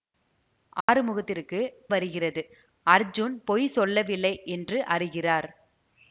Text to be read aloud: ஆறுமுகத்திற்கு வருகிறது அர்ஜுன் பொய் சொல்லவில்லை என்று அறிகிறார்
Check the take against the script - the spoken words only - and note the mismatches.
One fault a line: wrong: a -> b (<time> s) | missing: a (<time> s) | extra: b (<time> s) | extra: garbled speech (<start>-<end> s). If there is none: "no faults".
no faults